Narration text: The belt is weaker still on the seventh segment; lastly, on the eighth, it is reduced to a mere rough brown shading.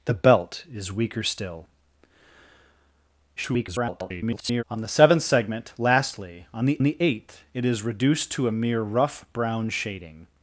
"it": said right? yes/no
yes